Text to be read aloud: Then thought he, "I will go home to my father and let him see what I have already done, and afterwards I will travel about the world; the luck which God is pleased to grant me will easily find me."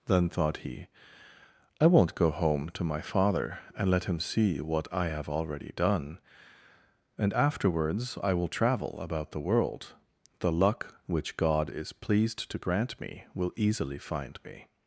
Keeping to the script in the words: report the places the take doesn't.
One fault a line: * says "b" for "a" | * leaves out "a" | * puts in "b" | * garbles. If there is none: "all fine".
* says "won't" for "will"